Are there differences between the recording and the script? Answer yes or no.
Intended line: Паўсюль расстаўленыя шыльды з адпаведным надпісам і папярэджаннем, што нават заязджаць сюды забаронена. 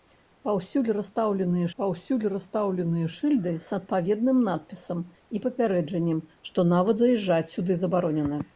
yes